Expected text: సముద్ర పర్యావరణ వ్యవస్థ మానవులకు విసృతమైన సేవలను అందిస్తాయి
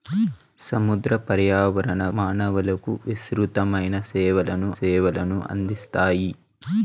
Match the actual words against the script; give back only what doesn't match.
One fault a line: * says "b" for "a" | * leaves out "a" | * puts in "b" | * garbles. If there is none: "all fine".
* leaves out "వ్యవస్థ"
* puts in "సేవలను"